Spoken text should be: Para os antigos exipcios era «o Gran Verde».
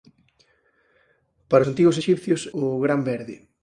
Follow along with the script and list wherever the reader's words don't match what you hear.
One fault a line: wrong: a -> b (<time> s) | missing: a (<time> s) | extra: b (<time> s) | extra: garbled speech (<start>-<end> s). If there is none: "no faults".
missing: os (1.6 s)
missing: era (2.5 s)